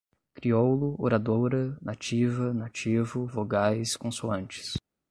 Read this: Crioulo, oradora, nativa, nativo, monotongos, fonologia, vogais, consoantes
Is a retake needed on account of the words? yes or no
yes